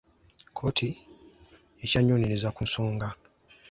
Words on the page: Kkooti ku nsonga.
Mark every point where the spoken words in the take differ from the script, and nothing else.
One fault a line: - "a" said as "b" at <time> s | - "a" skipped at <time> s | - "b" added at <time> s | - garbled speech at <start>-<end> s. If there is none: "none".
- "ekyanoonyereza" added at 1.8 s